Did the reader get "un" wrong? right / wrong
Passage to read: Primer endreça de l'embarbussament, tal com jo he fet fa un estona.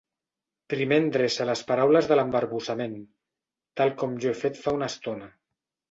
wrong